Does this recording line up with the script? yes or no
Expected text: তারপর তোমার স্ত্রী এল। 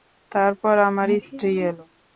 no